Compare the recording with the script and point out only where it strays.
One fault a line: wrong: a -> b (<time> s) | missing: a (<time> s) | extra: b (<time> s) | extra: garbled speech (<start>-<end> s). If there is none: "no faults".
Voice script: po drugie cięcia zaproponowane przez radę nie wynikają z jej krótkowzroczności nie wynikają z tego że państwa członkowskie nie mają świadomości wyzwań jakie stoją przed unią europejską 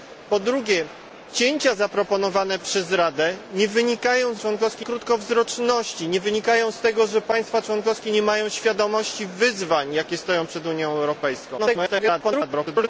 wrong: jej -> członkowskie (4.4 s)
extra: garbled speech (11.6-12.9 s)